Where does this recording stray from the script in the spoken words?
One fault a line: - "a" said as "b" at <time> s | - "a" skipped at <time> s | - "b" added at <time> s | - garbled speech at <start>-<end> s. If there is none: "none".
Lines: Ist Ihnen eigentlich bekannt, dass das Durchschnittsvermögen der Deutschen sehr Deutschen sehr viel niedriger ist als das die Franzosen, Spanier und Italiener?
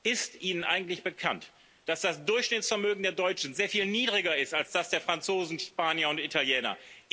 - "Deutschen sehr" skipped at 3.7 s
- "die" said as "der" at 4.9 s